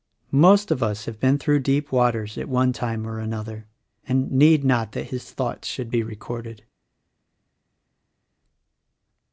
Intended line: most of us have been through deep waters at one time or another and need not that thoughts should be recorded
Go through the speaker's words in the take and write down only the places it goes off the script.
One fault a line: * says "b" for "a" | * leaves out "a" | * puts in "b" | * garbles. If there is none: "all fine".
* puts in "his"